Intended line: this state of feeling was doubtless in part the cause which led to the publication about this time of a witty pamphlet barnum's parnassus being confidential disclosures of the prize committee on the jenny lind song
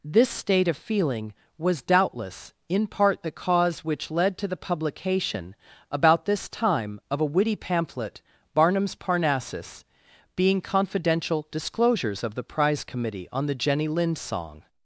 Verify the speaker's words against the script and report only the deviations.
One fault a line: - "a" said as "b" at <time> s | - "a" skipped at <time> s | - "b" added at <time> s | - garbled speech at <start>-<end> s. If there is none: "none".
none